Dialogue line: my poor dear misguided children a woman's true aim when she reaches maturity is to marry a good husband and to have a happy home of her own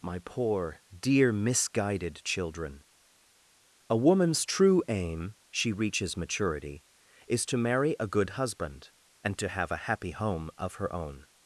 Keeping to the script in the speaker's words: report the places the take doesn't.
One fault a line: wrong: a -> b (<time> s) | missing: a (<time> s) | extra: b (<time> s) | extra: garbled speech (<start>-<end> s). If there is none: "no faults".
missing: when (5.3 s)